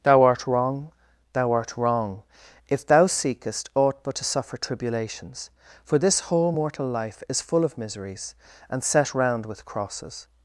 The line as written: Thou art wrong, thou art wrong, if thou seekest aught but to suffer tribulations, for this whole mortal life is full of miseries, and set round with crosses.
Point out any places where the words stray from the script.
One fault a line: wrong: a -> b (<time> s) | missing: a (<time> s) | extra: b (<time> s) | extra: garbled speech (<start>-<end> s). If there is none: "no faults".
no faults